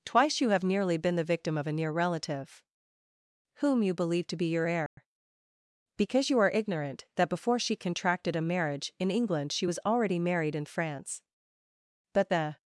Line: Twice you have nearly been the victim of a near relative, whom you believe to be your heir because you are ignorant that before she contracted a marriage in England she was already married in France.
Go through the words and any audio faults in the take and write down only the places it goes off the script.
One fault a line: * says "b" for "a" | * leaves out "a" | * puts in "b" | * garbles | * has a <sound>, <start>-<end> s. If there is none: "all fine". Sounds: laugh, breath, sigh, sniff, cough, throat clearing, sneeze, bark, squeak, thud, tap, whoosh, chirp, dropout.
* has a dropout, 4.9-5.0 s
* puts in "But the"